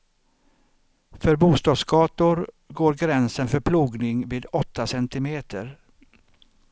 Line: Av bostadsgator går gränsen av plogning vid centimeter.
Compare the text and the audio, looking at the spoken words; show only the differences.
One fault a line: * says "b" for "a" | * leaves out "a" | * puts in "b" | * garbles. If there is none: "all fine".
* says "För" for "Av"
* says "för" for "av"
* puts in "åtta"